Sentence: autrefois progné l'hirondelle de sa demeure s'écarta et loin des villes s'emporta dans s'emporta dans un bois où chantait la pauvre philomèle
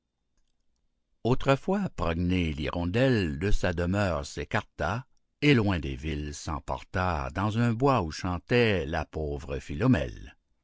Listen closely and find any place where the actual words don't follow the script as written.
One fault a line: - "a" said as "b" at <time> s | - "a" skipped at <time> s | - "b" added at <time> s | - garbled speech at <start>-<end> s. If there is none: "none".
- "s'emporta dans" skipped at 7.6 s